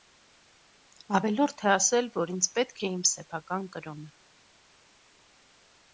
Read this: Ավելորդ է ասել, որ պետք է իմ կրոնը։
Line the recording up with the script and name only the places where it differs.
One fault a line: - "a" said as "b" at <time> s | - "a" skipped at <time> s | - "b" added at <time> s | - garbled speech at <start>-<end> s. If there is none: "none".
- "ինձ" added at 2.4 s
- "սեփական" added at 3.1 s